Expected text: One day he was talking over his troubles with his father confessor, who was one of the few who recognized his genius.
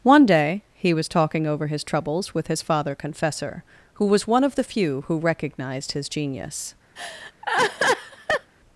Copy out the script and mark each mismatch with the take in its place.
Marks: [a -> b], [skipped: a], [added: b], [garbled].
One day he was talking over his troubles with his father confessor, who was one of the few who recognized his genius.